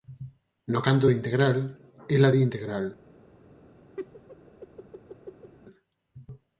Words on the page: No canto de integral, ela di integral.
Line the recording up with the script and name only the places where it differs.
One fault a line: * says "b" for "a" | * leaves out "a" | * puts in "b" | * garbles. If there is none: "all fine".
all fine